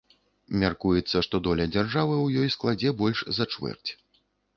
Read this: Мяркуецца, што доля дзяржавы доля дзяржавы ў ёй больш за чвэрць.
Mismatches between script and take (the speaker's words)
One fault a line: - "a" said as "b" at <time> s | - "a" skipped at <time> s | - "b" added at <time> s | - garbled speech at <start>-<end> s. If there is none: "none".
- "доля дзяржавы" skipped at 2.1 s
- "складзе" added at 2.6 s